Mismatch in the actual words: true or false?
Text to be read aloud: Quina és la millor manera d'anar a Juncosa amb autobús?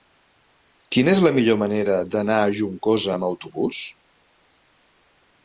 false